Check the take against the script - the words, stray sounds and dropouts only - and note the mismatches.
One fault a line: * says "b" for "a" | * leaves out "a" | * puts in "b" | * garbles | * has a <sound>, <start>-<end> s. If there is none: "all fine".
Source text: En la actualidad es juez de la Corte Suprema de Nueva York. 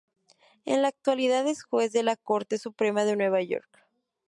all fine